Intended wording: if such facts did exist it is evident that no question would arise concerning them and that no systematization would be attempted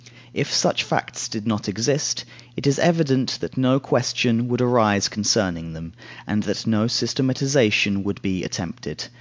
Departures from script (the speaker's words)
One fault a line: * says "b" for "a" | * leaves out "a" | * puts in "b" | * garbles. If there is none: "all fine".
* puts in "not"